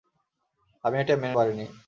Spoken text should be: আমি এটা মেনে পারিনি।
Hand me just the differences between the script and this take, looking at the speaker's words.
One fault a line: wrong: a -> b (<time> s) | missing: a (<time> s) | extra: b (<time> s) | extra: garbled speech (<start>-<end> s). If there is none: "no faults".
no faults